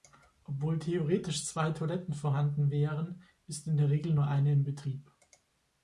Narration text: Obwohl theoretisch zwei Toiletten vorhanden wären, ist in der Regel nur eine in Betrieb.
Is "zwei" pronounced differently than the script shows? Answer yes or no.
no